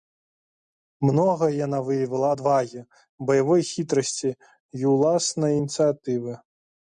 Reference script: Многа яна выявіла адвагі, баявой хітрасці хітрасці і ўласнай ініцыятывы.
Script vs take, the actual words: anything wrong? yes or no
yes